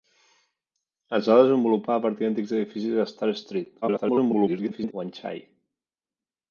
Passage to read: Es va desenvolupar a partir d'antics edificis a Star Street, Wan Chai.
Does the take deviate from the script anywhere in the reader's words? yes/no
yes